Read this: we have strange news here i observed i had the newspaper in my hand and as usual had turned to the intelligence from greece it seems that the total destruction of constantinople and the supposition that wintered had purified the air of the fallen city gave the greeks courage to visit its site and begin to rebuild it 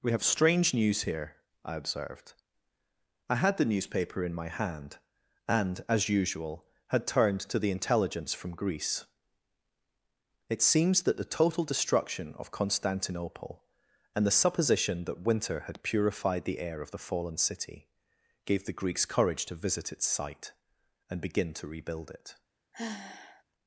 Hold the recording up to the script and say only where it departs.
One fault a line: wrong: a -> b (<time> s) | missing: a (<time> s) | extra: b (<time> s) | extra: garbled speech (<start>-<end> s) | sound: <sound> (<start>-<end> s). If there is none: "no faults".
wrong: wintered -> winter (15.3 s)
sound: sigh (22.7-23.4 s)